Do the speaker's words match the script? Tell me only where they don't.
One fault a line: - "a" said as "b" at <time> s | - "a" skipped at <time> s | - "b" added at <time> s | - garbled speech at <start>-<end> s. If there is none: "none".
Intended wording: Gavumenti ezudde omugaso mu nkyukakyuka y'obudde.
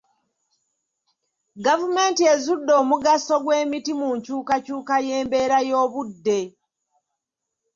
- "gw'emiti" added at 3.4 s
- "y'embeera" added at 5.1 s